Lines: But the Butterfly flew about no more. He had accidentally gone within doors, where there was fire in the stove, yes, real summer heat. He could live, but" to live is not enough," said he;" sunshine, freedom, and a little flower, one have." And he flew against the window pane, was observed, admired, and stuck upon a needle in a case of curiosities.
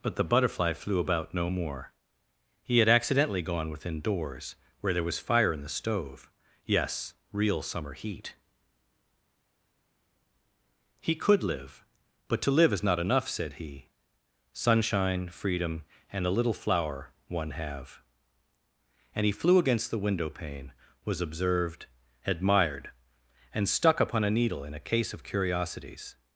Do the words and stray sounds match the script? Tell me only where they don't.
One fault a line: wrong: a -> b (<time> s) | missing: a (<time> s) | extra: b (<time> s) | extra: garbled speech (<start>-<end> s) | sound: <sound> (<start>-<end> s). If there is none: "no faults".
no faults